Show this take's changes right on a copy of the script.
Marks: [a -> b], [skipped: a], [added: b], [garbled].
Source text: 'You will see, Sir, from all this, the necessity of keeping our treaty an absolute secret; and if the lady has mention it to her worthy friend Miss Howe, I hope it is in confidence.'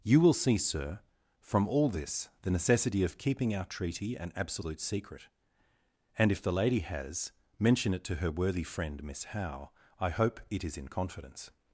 'You will see, Sir, from all this, the necessity of keeping our treaty an absolute secret; and if the lady has mention it to her worthy friend Miss Howe, I hope it is in confidence.'